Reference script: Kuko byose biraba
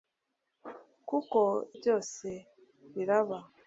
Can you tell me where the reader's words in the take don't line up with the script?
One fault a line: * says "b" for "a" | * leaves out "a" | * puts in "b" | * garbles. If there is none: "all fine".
all fine